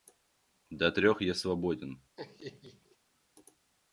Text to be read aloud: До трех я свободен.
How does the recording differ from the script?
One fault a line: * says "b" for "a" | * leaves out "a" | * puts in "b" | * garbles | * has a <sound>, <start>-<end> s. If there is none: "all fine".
* has a laugh, 2.2-3.0 s